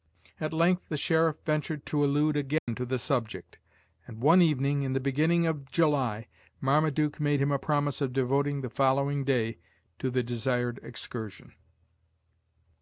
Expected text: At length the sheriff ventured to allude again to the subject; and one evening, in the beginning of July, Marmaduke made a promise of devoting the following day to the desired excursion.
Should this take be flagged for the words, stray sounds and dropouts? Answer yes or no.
yes